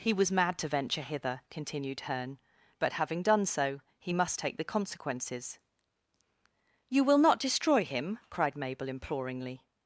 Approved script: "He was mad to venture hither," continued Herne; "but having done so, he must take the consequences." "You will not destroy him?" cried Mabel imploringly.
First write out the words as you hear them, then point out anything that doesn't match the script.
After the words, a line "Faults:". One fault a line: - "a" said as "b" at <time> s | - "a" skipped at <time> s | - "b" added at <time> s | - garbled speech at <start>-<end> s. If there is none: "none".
"He was mad to venture hither," continued Herne; "but having done so, he must take the consequences." "You will not destroy him?" cried Mabel imploringly.
Faults:
none